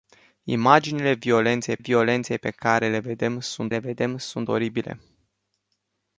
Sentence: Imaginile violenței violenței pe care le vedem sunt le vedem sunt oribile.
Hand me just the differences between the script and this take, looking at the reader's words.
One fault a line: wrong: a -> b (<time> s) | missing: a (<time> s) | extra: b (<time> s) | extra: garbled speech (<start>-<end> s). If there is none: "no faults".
no faults